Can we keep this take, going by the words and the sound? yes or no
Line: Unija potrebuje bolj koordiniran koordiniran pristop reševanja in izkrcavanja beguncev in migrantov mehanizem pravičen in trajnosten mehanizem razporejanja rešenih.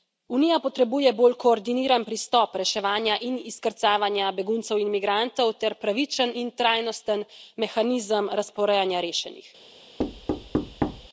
no